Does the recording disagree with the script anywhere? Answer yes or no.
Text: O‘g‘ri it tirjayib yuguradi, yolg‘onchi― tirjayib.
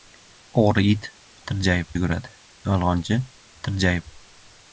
no